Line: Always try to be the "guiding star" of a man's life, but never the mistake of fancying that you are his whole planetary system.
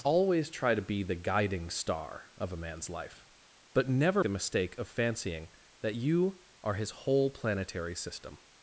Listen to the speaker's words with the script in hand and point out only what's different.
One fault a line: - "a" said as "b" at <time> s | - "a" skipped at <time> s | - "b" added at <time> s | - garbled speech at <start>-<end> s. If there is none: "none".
none